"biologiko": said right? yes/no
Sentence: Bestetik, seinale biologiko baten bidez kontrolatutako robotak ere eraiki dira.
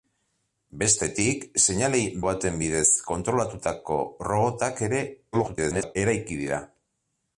no